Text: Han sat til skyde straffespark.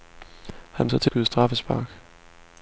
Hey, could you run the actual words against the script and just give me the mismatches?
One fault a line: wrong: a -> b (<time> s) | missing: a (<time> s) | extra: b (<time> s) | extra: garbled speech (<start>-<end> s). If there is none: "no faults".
no faults